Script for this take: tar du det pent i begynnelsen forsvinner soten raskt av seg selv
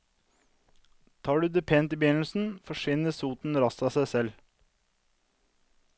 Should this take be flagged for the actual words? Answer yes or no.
no